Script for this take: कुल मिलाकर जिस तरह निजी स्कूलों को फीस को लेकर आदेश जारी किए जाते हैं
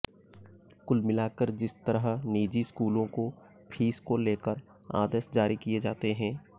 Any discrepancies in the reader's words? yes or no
no